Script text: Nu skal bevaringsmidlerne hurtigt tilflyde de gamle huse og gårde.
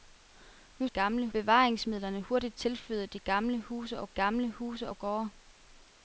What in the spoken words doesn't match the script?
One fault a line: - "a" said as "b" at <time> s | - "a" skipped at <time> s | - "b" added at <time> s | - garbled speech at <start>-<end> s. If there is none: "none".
- "skal" said as "gamle" at 0.9 s
- "gamle huse og" added at 4.1 s